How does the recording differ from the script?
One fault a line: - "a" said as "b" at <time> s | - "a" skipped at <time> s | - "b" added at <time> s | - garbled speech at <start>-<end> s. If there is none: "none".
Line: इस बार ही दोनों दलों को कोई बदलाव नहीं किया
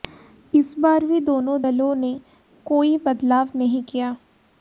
- "ही" said as "भी" at 1.1 s
- "को" said as "ने" at 1.9 s